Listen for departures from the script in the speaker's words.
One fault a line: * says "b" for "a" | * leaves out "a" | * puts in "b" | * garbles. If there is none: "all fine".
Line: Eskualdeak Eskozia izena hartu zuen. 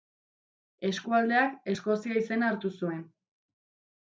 all fine